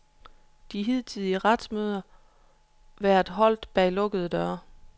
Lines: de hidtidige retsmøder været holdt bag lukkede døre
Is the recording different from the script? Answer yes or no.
no